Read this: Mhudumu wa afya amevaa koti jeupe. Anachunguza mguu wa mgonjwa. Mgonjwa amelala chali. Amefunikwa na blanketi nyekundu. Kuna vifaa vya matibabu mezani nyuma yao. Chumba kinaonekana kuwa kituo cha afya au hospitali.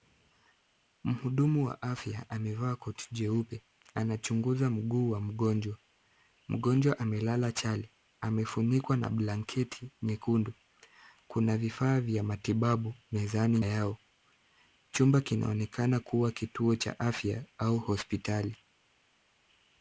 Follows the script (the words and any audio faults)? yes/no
no